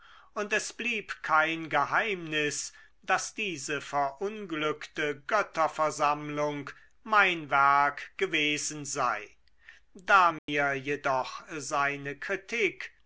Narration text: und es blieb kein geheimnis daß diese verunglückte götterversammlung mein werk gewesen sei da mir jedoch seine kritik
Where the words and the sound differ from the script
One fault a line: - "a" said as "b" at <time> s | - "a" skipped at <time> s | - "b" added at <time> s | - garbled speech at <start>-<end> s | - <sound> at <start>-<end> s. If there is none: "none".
- dropout at 10.4-10.5 s